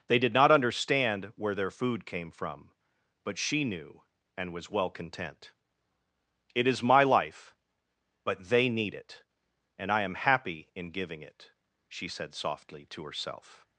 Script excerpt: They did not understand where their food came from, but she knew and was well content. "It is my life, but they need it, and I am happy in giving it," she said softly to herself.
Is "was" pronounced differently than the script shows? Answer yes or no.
no